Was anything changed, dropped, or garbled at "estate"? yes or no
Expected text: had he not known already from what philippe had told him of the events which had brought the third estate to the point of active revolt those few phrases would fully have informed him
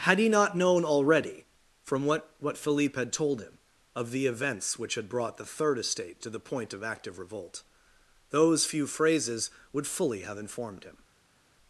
no